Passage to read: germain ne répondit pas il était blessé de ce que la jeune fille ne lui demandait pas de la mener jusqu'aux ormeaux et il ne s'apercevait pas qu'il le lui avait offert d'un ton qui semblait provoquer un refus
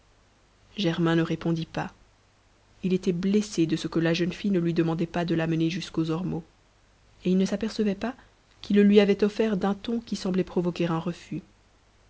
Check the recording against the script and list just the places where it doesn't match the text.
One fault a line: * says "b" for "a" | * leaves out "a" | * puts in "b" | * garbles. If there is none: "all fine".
all fine